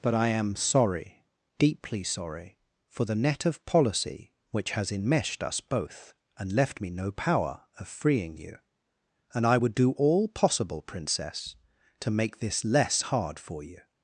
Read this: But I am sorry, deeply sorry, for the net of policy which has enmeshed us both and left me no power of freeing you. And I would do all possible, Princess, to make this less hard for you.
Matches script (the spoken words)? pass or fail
pass